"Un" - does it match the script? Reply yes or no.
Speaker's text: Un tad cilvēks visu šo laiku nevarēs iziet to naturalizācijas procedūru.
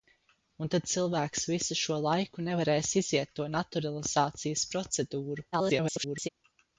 yes